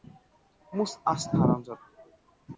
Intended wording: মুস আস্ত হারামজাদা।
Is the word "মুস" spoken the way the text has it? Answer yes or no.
yes